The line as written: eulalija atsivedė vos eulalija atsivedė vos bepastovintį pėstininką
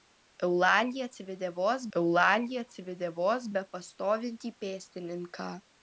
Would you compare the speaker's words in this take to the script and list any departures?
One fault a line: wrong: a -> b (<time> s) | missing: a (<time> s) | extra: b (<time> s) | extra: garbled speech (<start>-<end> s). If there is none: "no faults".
no faults